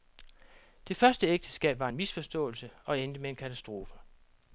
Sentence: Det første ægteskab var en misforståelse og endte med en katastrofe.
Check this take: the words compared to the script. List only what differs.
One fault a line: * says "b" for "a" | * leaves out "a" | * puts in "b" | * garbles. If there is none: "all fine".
all fine